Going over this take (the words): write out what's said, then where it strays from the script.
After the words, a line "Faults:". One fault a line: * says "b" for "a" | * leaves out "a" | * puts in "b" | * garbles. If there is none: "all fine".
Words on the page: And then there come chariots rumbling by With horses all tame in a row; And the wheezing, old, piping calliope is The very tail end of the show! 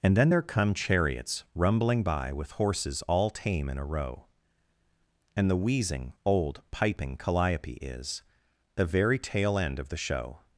And then there come chariots rumbling by With horses all tame in a row; And the wheezing, old, piping calliope is The very tail end of the show!
Faults:
all fine